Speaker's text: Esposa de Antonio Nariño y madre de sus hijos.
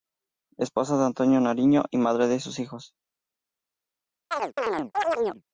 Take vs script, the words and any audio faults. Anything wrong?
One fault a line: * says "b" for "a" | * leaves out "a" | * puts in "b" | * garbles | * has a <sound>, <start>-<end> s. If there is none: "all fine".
* has a chirp, 4.3-5.4 s